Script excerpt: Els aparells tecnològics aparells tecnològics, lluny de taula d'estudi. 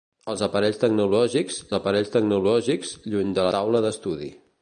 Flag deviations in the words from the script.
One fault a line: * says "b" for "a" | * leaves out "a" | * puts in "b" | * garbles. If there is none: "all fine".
all fine